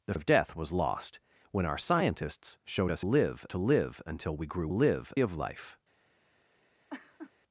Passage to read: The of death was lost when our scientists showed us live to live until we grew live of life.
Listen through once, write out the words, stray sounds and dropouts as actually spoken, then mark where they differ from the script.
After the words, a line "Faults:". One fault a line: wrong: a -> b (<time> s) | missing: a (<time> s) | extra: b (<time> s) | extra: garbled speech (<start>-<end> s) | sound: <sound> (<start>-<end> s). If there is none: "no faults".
The of death was lost when our scientists showed us live to live until we grew live of life.
Faults:
sound: laugh (6.9-7.3 s)